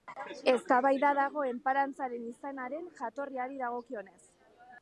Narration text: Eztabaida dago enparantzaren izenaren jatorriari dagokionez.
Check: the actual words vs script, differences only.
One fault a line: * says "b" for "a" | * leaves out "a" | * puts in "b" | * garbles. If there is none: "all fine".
all fine